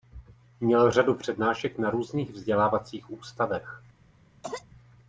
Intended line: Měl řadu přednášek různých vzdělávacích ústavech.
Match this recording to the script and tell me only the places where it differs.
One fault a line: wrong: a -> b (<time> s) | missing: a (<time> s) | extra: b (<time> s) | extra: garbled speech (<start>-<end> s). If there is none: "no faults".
extra: na (1.8 s)